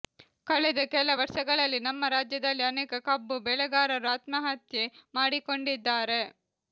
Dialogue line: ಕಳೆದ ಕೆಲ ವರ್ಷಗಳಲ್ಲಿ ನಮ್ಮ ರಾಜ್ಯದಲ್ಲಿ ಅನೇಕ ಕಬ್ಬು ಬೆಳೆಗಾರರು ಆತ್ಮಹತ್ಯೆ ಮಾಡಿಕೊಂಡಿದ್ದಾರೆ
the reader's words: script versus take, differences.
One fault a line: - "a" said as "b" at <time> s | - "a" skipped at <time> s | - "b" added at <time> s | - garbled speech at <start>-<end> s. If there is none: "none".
none